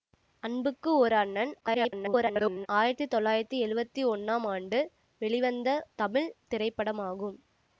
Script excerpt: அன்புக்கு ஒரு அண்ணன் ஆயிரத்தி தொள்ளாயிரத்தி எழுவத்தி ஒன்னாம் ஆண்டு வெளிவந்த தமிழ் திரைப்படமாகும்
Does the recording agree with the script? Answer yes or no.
no